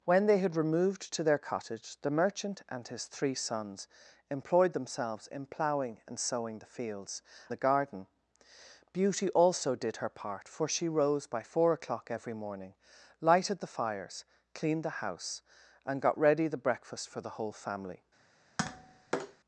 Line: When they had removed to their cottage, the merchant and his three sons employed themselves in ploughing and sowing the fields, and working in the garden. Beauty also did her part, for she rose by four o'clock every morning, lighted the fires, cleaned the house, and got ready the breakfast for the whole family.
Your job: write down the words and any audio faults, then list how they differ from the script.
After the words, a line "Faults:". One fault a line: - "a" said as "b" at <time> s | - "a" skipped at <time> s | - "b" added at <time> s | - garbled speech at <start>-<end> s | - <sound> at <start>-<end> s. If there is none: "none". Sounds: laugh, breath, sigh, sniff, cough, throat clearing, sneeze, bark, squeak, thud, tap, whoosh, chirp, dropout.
When they had removed to their cottage, the merchant and his three sons employed themselves in ploughing and sowing the fields, the garden. Beauty also did her part, for she rose by four o'clock every morning, lighted the fires, cleaned the house, and got ready the breakfast for the whole family.
Faults:
- "and working in" skipped at 7.2 s
- tap at 18.6-19.4 s